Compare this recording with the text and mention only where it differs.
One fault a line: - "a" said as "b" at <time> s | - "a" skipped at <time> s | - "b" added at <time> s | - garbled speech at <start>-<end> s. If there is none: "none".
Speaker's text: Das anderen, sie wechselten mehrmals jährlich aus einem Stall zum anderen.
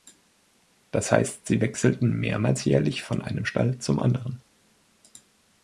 - "anderen" said as "heißt" at 1.1 s
- "aus" said as "von" at 3.0 s